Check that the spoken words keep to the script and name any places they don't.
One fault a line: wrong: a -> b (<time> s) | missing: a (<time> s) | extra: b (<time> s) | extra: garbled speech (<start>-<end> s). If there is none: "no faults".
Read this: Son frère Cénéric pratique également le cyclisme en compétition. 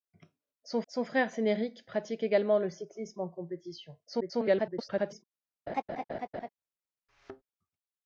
extra: son (0.9 s)
extra: garbled speech (4.1-5.2 s)